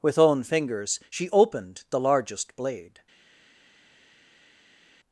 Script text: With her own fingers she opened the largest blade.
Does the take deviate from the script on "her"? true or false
true